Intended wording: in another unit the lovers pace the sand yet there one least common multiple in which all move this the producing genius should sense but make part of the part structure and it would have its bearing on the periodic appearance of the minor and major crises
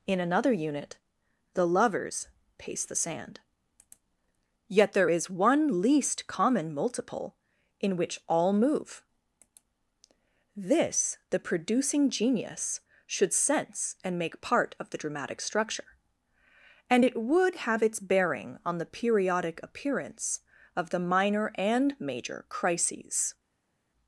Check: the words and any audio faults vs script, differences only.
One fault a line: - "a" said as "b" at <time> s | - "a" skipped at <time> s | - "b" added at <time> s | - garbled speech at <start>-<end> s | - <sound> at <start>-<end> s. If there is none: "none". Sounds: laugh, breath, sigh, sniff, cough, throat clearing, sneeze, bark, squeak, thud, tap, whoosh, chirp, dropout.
- "is" added at 5.1 s
- "but" said as "and" at 14.0 s
- "part" said as "dramatic" at 15.0 s